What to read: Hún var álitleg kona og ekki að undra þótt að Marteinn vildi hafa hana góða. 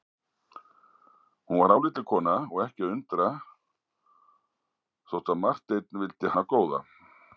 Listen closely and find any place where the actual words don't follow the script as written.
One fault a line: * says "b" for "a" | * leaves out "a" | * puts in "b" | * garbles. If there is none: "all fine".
* leaves out "hafa"